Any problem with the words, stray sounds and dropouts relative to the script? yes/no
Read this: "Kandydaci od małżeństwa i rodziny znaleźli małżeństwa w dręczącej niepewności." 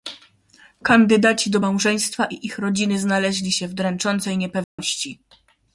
yes